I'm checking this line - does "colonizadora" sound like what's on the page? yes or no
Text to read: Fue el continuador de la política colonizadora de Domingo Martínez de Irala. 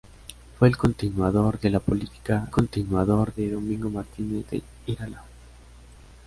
no